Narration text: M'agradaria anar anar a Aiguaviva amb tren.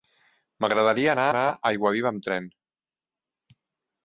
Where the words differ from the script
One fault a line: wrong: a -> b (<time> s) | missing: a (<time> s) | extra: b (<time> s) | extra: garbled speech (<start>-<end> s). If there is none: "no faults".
no faults